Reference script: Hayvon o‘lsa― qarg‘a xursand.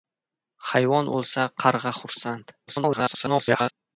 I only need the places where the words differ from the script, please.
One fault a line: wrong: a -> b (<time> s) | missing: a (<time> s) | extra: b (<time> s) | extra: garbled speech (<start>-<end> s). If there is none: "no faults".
extra: garbled speech (2.7-3.7 s)